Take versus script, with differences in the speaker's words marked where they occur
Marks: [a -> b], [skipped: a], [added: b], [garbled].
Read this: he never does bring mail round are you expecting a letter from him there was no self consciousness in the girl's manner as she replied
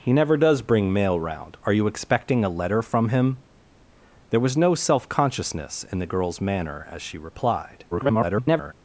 he never does bring mail round are you expecting a letter from him there was no self consciousness in the girl's manner as she replied [garbled]